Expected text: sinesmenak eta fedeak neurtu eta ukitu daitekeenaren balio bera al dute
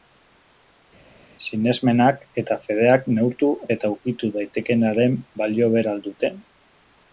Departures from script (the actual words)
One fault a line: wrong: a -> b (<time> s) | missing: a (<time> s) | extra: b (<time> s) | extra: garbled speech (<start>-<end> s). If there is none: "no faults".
no faults